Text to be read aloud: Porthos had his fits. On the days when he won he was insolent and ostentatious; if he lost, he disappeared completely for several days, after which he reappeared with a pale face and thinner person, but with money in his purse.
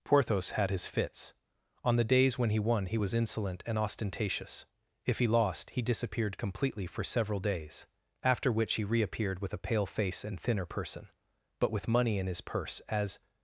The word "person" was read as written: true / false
true